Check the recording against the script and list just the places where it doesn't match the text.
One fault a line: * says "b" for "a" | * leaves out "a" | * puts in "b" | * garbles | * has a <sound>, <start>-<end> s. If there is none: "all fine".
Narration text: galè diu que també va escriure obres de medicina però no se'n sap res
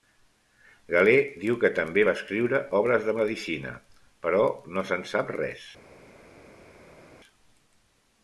all fine